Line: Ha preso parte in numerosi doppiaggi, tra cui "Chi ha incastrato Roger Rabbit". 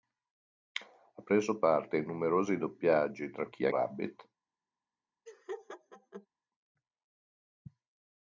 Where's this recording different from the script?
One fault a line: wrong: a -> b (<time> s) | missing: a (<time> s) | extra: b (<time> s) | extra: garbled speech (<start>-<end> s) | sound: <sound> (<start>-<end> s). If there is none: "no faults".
missing: cui (3.5 s)
missing: incastrato Roger (3.7 s)
sound: laugh (5.3-6.3 s)